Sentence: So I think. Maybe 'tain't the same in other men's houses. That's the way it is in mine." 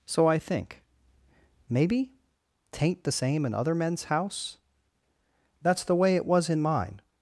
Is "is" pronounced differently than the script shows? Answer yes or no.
yes